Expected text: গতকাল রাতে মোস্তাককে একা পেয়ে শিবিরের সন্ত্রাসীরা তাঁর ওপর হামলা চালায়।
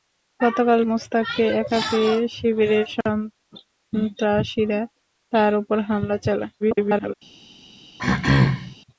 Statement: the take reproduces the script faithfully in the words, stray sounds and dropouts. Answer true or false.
false